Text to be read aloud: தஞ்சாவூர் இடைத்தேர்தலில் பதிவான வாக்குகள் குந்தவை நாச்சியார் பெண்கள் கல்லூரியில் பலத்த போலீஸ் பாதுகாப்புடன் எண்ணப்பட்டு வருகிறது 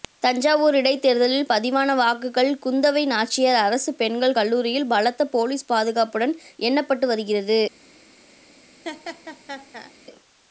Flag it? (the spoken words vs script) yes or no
yes